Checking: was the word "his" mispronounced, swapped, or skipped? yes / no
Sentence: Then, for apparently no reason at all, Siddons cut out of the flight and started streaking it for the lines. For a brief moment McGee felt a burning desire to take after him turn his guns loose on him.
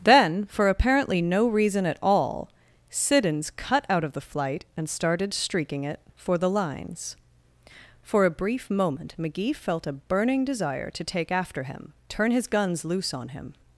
no